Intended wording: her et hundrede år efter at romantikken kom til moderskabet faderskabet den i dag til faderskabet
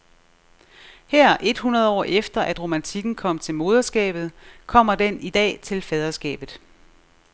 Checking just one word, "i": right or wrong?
right